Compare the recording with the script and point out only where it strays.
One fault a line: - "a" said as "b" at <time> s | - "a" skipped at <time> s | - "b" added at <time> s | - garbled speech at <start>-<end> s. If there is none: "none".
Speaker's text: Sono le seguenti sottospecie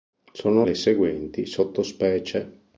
none